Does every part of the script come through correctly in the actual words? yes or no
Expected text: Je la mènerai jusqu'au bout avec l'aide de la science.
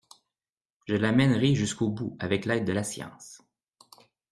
yes